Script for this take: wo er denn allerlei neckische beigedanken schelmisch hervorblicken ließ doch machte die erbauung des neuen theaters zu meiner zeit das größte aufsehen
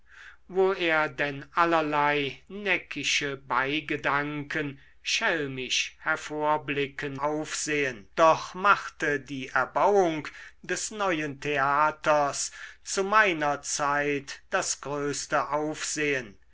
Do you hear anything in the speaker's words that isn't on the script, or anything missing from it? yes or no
yes